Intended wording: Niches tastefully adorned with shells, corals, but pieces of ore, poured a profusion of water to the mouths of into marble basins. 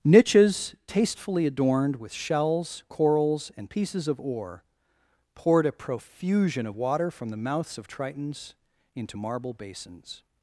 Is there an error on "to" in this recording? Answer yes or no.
yes